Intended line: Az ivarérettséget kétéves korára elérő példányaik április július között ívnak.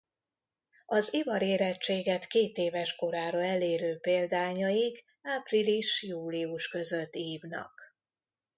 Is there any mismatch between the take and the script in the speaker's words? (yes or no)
no